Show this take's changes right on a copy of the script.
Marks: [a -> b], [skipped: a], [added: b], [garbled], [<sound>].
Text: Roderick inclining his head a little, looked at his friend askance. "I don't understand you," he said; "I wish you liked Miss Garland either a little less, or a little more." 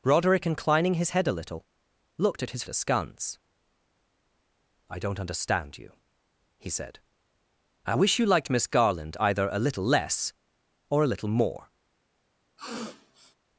Roderick inclining his head a little, looked at his [skipped: friend] askance. "I don't understand you," he said; "I wish you liked Miss Garland either a little less, or a little more." [sniff]